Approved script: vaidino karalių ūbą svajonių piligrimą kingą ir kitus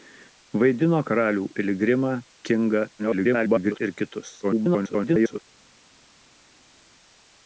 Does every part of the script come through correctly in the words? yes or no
no